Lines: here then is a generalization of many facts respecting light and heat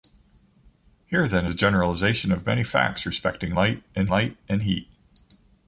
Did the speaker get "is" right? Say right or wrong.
wrong